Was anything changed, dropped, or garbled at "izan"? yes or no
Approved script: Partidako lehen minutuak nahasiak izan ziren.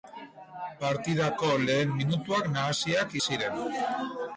yes